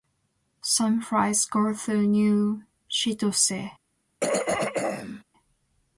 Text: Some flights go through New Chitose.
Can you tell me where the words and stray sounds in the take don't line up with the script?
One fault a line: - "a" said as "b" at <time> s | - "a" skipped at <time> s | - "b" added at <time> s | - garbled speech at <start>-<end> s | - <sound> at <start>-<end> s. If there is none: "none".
- throat clearing at 4.2-5.2 s